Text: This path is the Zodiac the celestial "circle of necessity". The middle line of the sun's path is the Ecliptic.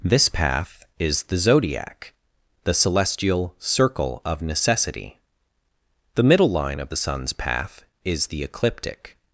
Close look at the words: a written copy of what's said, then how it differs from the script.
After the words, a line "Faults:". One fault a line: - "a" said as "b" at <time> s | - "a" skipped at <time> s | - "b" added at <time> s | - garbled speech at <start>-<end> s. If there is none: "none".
This path is the Zodiac the celestial "circle of necessity". The middle line of the sun's path is the Ecliptic.
Faults:
none